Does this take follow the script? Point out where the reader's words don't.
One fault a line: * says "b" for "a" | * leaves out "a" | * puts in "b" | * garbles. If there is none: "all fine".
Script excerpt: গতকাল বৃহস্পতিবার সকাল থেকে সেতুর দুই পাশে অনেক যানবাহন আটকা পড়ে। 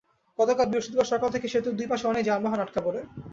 all fine